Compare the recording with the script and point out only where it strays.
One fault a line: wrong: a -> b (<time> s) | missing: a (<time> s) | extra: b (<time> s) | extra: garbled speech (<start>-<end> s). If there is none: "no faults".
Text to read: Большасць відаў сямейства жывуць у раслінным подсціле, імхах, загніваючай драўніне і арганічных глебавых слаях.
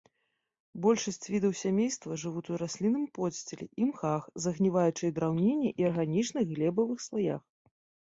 no faults